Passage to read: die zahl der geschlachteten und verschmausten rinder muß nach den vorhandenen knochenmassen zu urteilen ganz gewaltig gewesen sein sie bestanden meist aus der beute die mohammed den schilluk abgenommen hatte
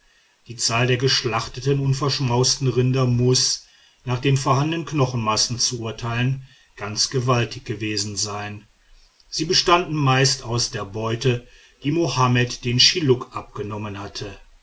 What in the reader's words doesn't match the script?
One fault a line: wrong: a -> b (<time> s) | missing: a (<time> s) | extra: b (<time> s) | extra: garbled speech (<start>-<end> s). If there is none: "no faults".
no faults